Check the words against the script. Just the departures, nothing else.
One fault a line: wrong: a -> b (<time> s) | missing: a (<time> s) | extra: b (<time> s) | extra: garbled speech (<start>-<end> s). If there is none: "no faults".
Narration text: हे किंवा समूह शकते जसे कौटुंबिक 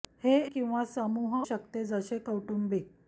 no faults